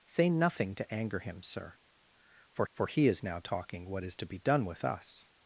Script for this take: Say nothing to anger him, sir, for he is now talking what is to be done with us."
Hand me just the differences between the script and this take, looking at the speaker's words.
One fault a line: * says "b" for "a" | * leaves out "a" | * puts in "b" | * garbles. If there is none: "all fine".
* puts in "for"